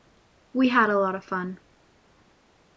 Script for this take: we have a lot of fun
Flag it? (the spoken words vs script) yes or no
yes